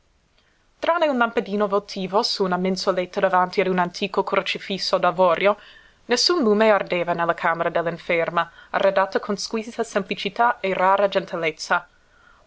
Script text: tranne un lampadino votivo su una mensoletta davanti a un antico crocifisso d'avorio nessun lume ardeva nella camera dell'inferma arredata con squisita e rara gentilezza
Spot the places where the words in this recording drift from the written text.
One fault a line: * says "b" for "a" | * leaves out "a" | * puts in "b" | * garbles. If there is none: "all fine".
* puts in "semplicità"